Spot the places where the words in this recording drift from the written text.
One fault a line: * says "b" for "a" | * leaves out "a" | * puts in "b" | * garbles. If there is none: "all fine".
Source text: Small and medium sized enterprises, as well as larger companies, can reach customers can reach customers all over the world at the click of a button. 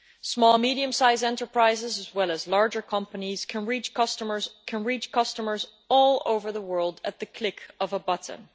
all fine